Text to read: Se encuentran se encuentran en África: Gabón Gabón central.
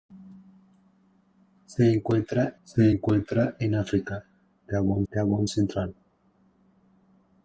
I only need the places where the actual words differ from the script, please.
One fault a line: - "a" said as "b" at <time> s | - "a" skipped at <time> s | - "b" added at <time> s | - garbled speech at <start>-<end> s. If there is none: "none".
none